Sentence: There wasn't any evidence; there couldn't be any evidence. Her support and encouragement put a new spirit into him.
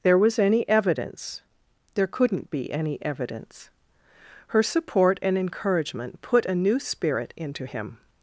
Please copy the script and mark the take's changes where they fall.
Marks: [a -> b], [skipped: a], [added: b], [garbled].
There [wasn't -> was] any evidence; there couldn't be any evidence. Her support and encouragement put a new spirit into him.